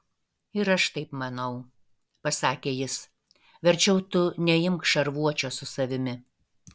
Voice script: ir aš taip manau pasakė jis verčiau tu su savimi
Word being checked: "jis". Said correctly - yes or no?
yes